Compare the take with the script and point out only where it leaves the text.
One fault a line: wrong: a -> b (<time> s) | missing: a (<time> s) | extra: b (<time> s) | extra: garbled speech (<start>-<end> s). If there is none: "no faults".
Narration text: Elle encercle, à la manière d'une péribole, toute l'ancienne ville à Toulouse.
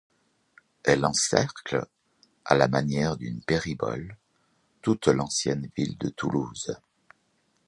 wrong: à -> de (6.0 s)